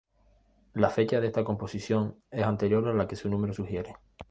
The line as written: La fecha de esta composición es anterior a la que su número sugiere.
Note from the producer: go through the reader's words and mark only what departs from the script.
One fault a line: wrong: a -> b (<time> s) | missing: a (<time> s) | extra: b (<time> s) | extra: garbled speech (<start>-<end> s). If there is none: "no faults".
no faults